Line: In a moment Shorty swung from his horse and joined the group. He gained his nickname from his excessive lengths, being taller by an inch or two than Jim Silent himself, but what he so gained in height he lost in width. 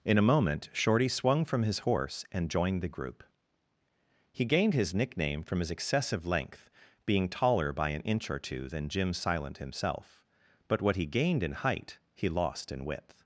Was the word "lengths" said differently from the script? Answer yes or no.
yes